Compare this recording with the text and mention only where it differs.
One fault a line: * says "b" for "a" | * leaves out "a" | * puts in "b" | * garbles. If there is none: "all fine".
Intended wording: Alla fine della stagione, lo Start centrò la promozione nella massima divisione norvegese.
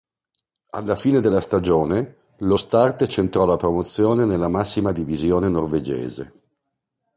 all fine